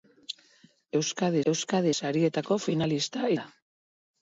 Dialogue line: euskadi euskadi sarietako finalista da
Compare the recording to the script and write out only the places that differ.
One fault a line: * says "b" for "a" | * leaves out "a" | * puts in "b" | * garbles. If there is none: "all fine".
all fine